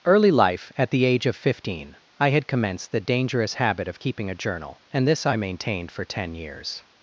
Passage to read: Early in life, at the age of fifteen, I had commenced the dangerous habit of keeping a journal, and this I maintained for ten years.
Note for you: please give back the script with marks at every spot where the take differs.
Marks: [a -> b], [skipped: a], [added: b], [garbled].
Early [skipped: in] life, at the age of fifteen, I had commenced the dangerous habit of keeping a journal, and this I maintained for ten years.